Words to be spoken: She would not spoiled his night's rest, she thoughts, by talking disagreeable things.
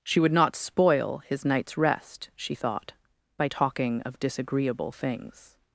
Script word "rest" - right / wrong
right